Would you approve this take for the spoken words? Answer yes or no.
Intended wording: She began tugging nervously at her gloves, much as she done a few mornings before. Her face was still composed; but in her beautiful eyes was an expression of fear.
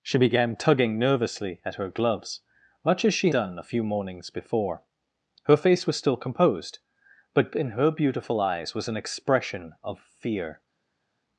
yes